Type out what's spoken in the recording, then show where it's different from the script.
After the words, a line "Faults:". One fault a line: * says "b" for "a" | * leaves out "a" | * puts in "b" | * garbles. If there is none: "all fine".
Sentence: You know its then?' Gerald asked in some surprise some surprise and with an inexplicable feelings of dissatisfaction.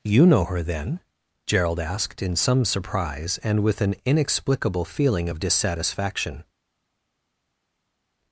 You know her then?' Gerald asked in some surprise and with an inexplicable feeling of dissatisfaction.
Faults:
* says "her" for "its"
* leaves out "some surprise"
* says "feeling" for "feelings"